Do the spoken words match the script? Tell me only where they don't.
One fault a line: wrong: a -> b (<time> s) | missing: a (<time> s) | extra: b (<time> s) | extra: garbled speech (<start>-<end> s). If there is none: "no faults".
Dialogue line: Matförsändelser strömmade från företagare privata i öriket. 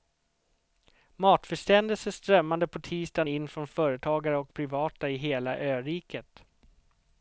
extra: på tisdagen in (2.7 s)
extra: och (4.4 s)
extra: hela (5.2 s)